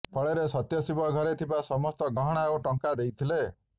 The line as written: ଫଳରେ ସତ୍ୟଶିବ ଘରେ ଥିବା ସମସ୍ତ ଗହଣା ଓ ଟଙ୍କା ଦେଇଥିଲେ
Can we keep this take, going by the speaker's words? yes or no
yes